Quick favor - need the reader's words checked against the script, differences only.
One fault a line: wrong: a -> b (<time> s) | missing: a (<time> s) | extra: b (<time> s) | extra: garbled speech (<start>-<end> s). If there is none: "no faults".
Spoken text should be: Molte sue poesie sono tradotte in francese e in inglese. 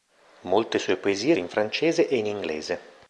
missing: sono tradotte (1.4 s)